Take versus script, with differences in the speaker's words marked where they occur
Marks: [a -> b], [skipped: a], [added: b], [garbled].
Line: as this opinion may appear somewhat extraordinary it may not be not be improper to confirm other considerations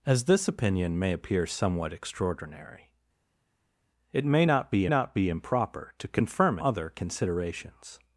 as this opinion may appear somewhat extraordinary it may not be not be improper to confirm other considerations